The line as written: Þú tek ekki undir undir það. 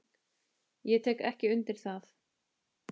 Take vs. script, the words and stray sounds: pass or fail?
fail